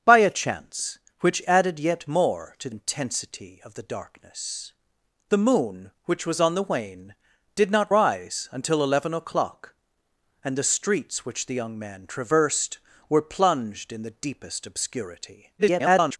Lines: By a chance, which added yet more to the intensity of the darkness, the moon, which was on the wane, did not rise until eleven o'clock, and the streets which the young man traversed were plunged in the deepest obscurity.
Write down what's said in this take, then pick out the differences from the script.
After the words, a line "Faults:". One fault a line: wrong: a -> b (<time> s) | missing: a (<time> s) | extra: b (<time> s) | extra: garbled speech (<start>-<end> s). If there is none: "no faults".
By a chance, which added yet more to intensity of the darkness, the moon, which was on the wane, did not rise until eleven o'clock, and the streets which the young man traversed were plunged in the deepest obscurity. [garbled]
Faults:
missing: the (2.7 s)
extra: garbled speech (15.6-16.2 s)